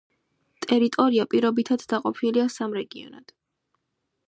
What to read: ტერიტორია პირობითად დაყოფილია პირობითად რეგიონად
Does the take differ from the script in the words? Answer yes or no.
yes